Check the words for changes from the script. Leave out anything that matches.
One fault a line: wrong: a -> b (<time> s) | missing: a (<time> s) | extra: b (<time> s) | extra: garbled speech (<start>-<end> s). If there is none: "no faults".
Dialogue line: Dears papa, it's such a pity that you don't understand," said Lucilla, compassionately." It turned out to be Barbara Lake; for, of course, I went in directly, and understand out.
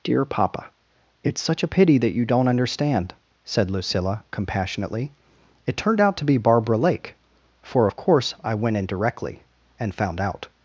wrong: Dears -> Dear (0.0 s)
wrong: understand -> found (9.9 s)